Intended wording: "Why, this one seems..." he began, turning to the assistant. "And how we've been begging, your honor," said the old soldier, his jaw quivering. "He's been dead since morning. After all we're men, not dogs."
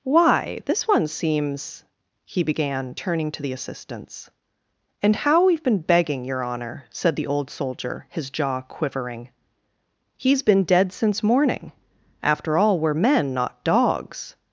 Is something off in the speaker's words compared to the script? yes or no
yes